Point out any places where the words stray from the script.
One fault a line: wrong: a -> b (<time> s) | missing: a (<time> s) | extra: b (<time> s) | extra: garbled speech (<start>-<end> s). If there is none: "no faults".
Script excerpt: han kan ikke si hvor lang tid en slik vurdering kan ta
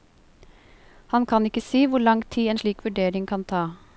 no faults